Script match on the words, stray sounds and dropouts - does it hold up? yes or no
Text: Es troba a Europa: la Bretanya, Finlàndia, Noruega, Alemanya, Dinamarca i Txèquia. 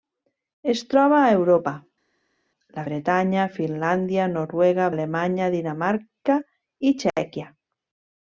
yes